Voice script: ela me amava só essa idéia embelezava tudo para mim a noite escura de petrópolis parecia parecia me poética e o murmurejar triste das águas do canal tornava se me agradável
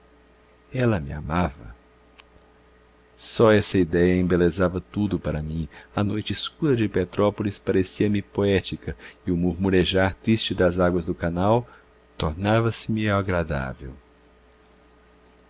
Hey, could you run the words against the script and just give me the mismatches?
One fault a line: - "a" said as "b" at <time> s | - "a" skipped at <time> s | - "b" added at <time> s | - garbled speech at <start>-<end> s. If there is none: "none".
- "parecia" skipped at 8.1 s